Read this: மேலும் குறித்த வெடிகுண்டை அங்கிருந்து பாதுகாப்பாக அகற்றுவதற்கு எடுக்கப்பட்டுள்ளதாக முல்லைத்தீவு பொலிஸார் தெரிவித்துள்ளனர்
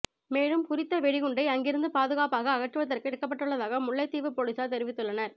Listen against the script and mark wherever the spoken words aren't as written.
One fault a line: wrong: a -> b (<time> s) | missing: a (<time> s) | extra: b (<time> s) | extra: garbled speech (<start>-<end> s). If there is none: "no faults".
no faults